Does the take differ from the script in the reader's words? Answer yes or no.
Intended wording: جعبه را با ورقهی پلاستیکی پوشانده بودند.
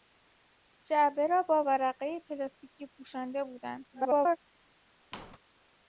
yes